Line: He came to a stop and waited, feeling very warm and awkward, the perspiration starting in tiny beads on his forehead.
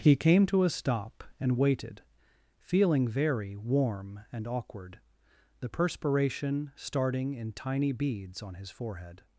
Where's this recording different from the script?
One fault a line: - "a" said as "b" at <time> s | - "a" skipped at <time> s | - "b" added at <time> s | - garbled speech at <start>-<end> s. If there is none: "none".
none